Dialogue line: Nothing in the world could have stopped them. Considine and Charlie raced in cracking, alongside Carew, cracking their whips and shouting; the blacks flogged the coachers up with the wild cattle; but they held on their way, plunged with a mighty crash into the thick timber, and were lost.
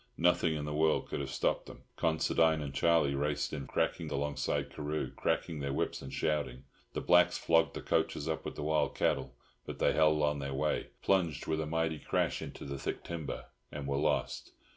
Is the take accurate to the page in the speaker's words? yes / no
yes